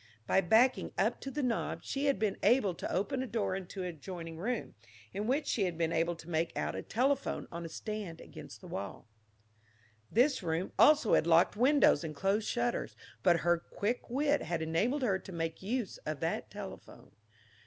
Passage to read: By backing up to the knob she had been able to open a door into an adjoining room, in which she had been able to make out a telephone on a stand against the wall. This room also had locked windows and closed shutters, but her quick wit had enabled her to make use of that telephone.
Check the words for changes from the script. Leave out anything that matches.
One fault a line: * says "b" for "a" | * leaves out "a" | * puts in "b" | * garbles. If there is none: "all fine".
all fine